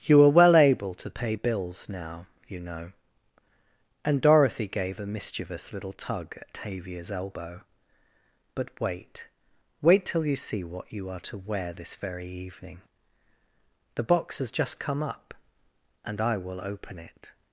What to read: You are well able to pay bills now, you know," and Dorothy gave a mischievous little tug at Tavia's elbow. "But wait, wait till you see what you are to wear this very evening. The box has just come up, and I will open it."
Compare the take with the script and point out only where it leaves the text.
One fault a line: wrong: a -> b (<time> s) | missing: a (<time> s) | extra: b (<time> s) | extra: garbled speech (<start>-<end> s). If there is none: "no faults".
no faults